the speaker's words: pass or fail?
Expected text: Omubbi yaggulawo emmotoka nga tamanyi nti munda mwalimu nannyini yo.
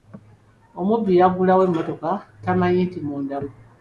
fail